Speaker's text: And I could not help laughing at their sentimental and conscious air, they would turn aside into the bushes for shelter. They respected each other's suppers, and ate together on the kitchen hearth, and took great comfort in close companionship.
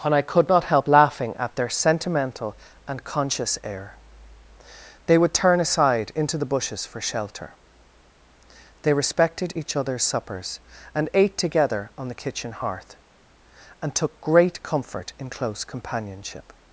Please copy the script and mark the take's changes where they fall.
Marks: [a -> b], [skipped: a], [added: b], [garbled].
And I could not help laughing at their sentimental and conscious air, they would turn aside into the bushes for shelter. They respected each other's suppers, and ate together on the kitchen hearth, and took great comfort in close companionship.